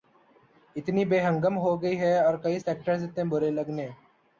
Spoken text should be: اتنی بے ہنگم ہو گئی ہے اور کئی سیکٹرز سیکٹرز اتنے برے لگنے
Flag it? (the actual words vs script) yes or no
yes